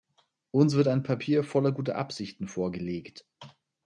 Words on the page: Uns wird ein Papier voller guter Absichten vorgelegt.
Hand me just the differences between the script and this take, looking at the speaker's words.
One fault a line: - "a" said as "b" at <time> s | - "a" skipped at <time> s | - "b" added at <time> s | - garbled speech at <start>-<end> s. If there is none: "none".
none